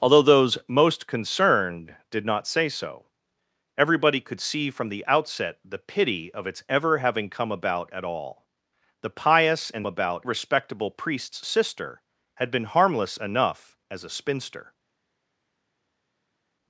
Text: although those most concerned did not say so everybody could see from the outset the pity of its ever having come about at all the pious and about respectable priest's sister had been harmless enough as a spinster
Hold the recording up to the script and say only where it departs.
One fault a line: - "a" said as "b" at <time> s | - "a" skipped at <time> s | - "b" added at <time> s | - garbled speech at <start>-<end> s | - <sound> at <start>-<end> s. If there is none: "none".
none